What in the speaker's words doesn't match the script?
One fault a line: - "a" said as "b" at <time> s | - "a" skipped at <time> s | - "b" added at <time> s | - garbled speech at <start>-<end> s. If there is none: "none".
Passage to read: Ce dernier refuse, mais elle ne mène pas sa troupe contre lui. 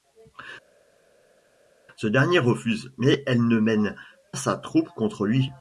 - "pas" skipped at 3.9 s